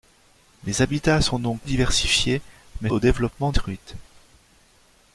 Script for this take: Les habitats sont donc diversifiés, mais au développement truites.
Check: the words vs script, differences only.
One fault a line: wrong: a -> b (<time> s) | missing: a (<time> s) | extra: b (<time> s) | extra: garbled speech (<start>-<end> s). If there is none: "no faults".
no faults